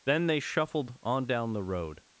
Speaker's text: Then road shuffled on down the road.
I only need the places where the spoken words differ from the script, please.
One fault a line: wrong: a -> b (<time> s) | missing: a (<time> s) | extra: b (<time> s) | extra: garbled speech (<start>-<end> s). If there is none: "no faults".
wrong: road -> they (0.3 s)